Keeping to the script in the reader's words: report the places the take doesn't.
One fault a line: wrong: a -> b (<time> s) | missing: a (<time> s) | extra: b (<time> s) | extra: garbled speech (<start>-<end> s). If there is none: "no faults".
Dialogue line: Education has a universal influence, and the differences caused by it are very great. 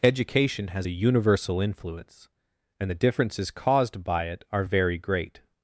no faults